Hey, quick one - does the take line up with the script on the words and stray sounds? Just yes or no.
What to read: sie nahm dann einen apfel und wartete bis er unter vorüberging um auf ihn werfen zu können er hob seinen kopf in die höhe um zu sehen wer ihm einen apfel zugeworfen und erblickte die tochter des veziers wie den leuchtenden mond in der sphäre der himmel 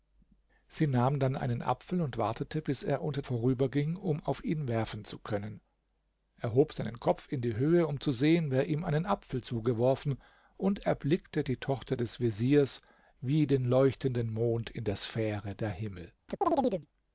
no